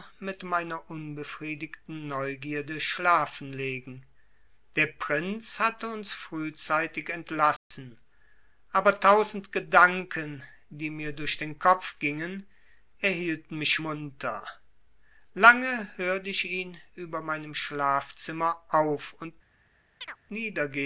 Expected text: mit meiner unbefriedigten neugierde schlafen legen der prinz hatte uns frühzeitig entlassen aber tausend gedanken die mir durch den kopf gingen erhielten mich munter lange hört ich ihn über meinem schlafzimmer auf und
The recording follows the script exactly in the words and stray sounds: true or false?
false